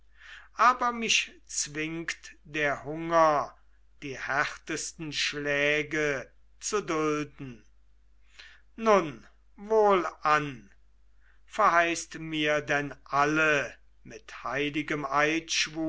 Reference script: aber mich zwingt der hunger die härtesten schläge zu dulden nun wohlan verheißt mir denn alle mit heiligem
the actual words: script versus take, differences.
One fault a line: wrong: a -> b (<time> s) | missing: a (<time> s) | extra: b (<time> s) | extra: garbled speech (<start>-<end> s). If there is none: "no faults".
no faults